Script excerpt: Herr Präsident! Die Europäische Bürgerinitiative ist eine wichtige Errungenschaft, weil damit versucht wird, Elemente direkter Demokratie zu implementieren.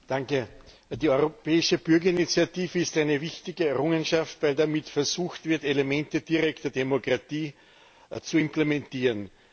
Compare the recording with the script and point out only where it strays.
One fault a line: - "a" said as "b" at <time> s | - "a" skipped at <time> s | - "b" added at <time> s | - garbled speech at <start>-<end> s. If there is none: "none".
none